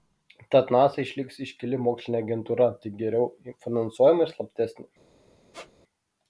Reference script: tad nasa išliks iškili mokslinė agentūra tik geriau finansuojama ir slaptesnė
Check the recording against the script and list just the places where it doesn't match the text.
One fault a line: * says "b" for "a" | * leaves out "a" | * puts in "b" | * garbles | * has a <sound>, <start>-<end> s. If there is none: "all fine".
* has a squeak, 5.5-5.7 s